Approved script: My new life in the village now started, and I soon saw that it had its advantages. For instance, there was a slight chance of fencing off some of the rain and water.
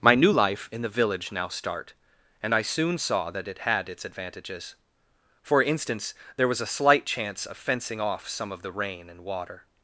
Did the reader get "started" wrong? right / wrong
wrong